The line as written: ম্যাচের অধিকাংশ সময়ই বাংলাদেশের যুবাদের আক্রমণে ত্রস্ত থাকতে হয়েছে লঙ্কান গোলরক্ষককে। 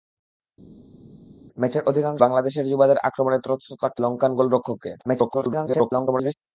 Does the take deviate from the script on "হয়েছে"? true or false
true